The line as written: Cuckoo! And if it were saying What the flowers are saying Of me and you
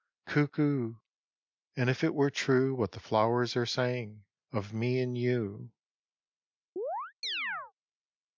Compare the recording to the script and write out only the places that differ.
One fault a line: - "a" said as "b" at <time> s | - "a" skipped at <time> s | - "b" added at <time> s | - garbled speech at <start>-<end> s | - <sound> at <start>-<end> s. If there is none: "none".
- "saying" said as "true" at 2.3 s
- chirp at 6.8-7.7 s